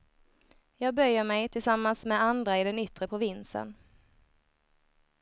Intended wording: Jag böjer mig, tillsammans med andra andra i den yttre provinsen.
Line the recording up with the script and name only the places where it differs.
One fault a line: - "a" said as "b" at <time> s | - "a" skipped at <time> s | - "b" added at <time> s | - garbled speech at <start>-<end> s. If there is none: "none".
- "andra" skipped at 2.6 s